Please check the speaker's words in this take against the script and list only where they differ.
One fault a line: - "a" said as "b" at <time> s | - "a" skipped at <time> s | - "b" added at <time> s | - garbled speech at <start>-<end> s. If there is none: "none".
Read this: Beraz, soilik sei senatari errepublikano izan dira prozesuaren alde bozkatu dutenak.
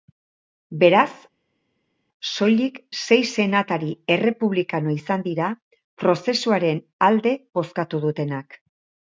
none